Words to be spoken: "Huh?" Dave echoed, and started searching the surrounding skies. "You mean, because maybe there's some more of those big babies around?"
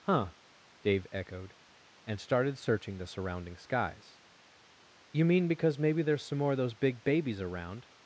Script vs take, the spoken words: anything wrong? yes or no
no